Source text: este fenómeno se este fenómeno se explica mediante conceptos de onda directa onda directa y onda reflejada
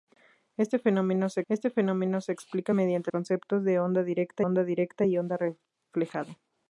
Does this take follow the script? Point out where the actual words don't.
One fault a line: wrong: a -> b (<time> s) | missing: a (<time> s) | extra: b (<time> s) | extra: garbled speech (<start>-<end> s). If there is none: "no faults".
no faults